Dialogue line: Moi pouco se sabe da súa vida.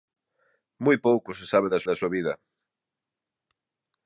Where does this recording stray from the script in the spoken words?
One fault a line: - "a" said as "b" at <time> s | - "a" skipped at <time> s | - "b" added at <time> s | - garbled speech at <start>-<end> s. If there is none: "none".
- "da" added at 1.9 s